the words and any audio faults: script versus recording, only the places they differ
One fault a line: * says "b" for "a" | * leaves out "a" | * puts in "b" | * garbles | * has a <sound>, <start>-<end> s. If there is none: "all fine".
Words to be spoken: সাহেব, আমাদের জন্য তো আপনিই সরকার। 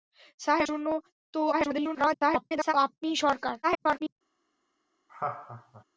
* leaves out "আমাদের"
* garbles
* garbles
* has a laugh, 5.1-5.8 s